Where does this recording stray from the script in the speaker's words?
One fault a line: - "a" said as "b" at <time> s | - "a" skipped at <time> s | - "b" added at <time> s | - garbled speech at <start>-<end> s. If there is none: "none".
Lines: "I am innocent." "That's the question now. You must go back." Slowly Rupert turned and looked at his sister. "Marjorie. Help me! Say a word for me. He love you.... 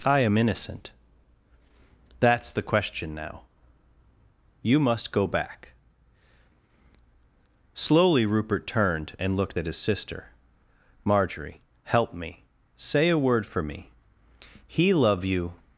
none